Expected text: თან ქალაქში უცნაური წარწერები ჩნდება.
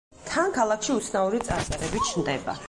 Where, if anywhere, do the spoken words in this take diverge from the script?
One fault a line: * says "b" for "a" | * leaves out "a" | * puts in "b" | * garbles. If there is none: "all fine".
all fine